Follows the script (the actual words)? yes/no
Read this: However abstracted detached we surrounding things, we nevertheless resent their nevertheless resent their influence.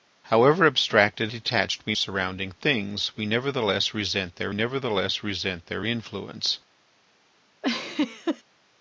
yes